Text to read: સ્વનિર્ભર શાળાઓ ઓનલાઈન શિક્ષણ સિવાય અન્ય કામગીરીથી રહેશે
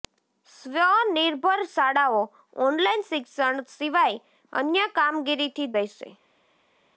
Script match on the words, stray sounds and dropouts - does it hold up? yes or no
yes